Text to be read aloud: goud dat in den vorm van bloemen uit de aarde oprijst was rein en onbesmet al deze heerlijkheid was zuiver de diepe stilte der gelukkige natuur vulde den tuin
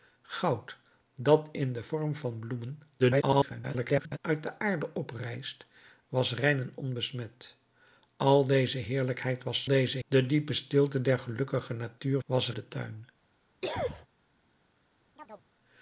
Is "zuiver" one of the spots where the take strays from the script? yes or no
yes